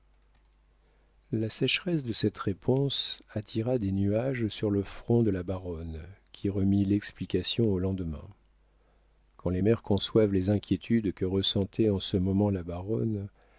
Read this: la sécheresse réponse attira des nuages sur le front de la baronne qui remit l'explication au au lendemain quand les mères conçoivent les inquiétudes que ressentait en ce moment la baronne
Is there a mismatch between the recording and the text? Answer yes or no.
yes